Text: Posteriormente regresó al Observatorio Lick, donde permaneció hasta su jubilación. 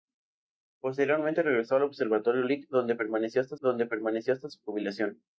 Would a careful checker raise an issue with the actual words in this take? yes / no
yes